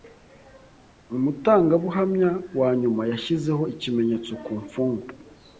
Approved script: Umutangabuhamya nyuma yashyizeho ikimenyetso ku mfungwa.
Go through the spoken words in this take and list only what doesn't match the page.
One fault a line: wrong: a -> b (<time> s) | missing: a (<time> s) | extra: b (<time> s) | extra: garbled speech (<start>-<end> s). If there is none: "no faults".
extra: wa (2.6 s)